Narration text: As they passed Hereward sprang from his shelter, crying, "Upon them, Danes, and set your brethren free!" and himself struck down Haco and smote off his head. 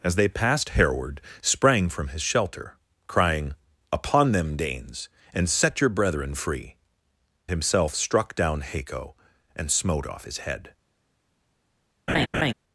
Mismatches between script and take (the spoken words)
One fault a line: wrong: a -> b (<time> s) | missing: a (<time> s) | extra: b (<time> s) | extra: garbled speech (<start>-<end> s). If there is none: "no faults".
missing: and (6.8 s)